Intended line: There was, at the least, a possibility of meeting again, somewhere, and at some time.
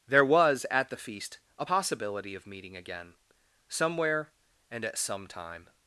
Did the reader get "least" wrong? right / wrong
wrong